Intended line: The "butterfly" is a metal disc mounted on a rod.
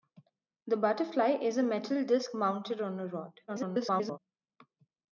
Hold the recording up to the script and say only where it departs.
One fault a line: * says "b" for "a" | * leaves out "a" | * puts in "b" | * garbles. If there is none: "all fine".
* garbles